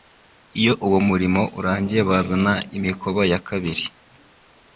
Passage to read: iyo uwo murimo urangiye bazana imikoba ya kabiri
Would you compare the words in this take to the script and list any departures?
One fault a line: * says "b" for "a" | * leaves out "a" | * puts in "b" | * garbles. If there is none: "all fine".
all fine